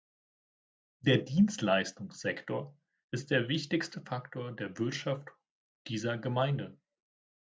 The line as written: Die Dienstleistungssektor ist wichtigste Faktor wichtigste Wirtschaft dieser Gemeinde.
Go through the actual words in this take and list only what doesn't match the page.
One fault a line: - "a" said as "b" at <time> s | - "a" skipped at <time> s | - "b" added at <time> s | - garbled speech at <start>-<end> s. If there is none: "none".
- "Die" said as "Der" at 1.0 s
- "der" added at 3.3 s
- "wichtigste" said as "der" at 4.5 s